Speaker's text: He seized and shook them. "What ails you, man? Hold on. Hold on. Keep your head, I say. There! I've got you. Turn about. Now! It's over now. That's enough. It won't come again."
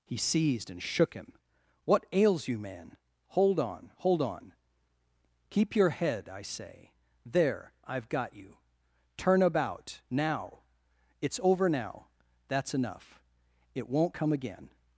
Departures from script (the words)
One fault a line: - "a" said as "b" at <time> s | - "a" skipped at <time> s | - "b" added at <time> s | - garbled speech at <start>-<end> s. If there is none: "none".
- "them" said as "him" at 1.1 s